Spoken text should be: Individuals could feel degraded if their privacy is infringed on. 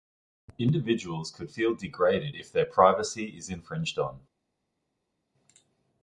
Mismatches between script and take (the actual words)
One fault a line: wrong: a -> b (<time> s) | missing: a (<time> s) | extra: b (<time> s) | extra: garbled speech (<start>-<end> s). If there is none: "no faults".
no faults